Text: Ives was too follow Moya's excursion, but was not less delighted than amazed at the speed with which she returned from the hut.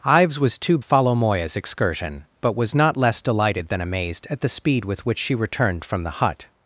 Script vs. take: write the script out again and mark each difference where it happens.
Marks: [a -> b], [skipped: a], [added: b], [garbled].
Ives was too follow Moya's excursion, but was not less delighted than amazed at the speed with which she returned from the hut.